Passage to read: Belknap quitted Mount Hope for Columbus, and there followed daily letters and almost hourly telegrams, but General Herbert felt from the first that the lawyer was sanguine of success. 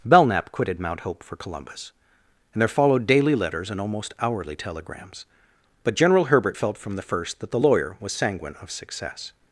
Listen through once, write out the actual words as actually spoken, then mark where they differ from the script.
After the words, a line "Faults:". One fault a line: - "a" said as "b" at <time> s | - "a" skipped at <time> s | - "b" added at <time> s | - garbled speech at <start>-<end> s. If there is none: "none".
Belknap quitted Mount Hope for Columbus, and there followed daily letters and almost hourly telegrams, but General Herbert felt from the first that the lawyer was sanguine of success.
Faults:
none